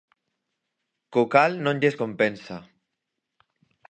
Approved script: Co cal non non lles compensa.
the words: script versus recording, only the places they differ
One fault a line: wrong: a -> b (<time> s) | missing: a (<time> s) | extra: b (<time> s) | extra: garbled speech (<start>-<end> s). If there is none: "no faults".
missing: non (1.8 s)